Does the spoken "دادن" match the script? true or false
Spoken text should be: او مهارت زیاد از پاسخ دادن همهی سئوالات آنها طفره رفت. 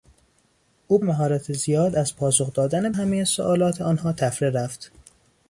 true